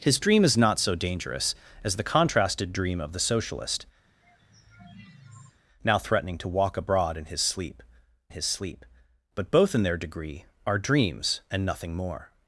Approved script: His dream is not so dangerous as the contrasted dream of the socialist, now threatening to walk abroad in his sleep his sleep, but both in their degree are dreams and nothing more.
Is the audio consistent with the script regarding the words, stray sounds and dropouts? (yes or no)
no